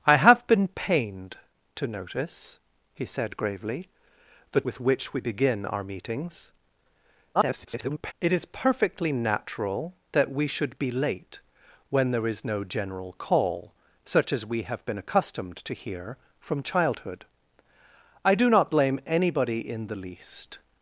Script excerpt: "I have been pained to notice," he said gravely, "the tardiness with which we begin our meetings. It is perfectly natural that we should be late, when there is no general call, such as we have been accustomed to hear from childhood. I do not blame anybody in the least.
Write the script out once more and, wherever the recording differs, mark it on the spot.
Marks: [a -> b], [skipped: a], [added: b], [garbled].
"I have been pained to notice," he said gravely, "the [skipped: tardiness] with which we begin our meetings. [garbled] It is perfectly natural that we should be late, when there is no general call, such as we have been accustomed to hear from childhood. I do not blame anybody in the least.